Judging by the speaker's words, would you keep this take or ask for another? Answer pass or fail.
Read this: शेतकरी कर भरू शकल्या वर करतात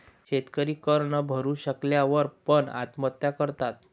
fail